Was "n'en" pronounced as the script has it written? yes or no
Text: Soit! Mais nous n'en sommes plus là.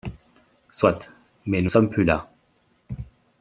no